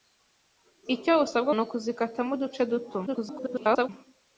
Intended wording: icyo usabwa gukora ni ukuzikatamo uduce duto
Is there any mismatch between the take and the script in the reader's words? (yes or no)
yes